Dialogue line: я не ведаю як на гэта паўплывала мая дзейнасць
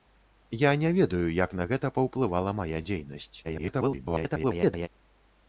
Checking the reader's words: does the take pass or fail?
fail